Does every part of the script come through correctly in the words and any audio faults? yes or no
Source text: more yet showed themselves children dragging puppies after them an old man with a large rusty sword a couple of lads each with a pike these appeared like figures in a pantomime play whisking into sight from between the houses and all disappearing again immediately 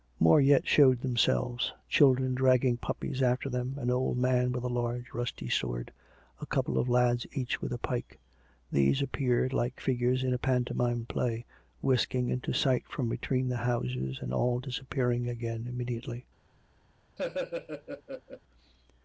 no